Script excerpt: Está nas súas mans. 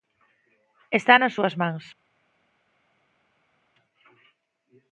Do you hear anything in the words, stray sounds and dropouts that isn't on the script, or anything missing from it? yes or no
no